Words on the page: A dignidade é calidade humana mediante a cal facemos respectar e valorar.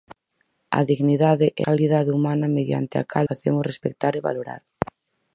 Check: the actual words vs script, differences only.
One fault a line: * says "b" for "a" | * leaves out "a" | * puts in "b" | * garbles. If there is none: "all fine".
all fine